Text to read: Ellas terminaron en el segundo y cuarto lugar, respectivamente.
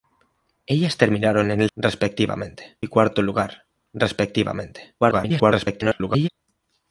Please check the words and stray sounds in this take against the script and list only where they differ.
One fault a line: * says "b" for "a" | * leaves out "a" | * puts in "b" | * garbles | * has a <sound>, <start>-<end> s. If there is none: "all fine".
* says "respectivamente" for "segundo"
* garbles